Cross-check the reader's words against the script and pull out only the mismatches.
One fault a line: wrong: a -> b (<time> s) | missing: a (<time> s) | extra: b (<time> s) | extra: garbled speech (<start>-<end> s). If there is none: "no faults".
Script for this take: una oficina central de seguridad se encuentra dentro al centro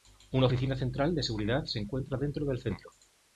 wrong: al -> del (2.5 s)